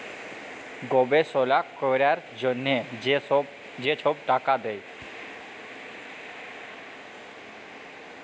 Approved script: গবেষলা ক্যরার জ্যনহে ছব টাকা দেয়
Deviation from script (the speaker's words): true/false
true